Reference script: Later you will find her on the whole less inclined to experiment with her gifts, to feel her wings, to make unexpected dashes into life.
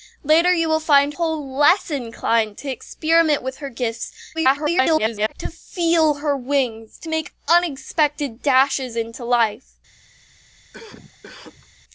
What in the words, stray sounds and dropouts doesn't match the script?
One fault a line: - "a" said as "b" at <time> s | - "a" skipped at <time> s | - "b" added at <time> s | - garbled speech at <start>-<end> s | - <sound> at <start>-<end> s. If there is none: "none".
- "her on the" skipped at 1.1 s
- garbled speech at 4.3-5.3 s
- cough at 10.7-11.7 s